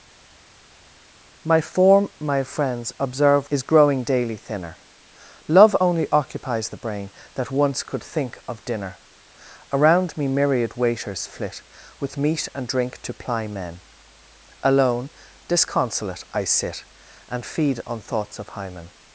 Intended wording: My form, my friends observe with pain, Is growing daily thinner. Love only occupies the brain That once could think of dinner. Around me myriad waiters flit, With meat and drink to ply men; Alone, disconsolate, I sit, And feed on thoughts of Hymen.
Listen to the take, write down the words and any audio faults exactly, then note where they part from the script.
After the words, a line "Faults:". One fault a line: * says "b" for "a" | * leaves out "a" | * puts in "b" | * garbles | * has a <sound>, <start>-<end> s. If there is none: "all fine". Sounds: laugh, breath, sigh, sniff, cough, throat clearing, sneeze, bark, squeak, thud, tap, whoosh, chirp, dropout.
My form, my friends observe Is growing daily thinner. Love only occupies the brain That once could think of dinner. Around me myriad waiters flit, With meat and drink to ply men; Alone, disconsolate, I sit, And feed on thoughts of Hymen.
Faults:
* leaves out "with pain"